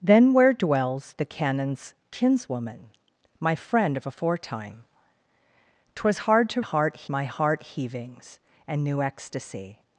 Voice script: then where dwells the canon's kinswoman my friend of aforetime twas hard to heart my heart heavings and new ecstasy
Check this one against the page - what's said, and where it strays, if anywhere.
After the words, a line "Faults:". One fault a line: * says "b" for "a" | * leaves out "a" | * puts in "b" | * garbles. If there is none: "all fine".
then where dwells the canon's kinswoman my friend of aforetime twas hard to heart my heart heavings and new ecstasy
Faults:
all fine